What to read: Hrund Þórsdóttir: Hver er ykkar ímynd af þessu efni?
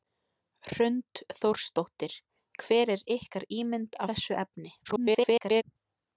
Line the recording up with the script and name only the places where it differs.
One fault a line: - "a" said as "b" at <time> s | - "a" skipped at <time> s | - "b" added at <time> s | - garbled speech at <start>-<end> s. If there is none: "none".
- "af" skipped at 4.0 s
- garbled speech at 4.8-5.6 s